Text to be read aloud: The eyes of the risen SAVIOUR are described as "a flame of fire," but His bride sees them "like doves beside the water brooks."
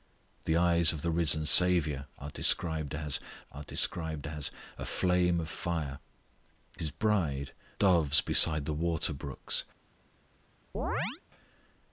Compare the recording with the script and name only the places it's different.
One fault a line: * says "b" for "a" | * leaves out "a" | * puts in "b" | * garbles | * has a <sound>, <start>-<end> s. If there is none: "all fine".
* puts in "are described as"
* leaves out "but"
* leaves out "sees them like"
* has a chirp, 10.7-11.2 s